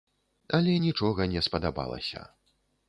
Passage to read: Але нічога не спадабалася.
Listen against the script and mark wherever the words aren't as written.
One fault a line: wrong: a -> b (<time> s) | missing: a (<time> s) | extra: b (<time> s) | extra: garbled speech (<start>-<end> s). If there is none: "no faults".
no faults